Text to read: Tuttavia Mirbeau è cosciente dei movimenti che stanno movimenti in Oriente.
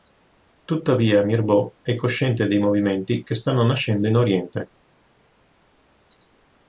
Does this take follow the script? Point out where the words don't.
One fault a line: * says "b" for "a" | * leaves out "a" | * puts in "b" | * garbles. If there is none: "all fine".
* says "nascendo" for "movimenti"